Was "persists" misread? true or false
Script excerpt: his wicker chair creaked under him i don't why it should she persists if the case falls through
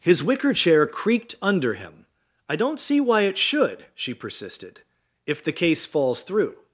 true